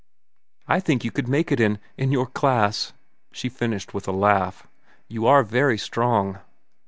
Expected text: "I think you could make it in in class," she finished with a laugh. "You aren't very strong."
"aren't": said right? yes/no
no